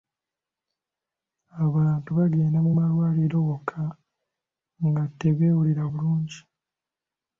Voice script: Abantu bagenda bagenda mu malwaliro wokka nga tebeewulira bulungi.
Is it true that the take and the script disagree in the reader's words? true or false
true